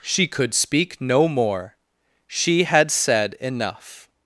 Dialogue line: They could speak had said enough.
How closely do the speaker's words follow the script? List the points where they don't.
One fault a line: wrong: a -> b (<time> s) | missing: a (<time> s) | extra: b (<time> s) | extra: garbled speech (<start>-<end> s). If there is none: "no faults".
wrong: They -> She (0.0 s)
extra: no more She (1.0 s)